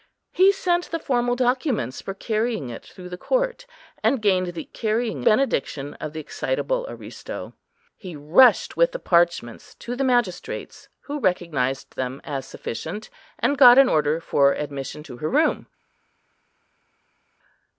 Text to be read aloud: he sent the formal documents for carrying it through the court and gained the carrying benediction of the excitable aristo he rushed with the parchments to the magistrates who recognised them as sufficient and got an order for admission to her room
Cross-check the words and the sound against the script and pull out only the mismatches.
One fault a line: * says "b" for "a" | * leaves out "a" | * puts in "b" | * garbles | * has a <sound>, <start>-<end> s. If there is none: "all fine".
all fine